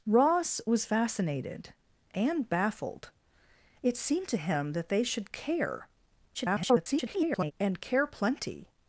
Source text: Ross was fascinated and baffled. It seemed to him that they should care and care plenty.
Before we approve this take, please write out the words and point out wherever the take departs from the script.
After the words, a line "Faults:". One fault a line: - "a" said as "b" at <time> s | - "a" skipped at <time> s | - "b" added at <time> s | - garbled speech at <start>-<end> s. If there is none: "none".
Ross was fascinated and baffled. It seemed to him that they should care [garbled] and care plenty.
Faults:
- garbled speech at 6.3-7.5 s